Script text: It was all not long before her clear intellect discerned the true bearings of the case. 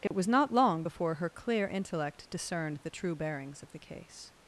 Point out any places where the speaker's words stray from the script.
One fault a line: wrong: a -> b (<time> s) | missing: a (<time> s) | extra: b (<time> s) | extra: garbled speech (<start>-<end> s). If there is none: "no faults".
missing: all (0.3 s)